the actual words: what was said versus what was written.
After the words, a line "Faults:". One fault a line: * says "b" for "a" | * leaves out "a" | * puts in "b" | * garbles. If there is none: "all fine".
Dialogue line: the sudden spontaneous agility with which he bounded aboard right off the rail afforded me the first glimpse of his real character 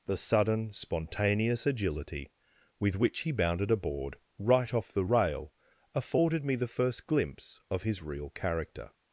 the sudden spontaneous agility with which he bounded aboard right off the rail afforded me the first glimpse of his real character
Faults:
all fine